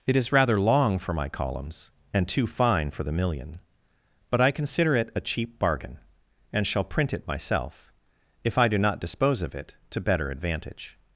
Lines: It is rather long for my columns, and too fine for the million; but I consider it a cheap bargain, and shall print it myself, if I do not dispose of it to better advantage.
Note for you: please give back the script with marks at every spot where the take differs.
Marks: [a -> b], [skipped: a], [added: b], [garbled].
It is rather long for my columns, and too fine for the million; but I consider it a cheap bargain, and shall print it myself, if I do not dispose of it to better advantage.